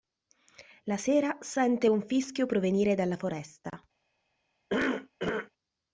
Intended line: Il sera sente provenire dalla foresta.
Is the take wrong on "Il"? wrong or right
wrong